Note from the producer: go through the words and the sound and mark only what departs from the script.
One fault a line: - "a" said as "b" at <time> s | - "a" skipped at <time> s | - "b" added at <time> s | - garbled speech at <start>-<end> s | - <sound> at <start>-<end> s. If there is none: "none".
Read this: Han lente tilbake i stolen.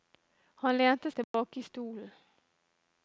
- dropout at 1.2-1.3 s